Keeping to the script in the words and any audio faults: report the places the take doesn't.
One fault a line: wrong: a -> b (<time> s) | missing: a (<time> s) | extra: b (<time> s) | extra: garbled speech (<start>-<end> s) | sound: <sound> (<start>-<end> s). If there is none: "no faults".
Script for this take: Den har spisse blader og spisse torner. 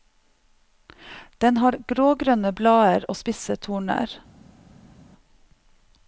wrong: spisse -> grågrønne (1.9 s)